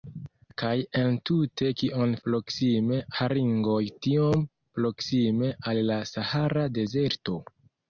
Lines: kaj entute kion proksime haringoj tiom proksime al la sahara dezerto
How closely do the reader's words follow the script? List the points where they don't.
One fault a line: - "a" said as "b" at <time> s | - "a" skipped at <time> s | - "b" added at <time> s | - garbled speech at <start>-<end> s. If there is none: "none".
none